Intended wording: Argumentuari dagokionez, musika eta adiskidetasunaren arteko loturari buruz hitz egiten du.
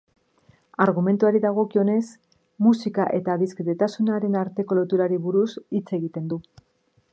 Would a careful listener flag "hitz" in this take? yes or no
no